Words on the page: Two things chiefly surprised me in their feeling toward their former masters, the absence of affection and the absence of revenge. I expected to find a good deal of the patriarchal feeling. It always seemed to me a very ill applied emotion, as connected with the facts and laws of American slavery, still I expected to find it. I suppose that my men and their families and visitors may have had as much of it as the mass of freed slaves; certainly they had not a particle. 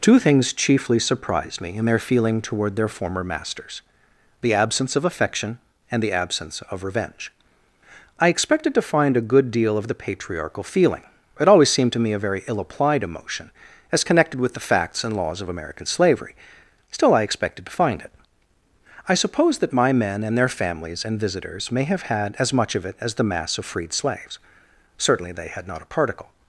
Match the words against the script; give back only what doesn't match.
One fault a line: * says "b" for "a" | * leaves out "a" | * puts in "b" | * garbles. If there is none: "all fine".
all fine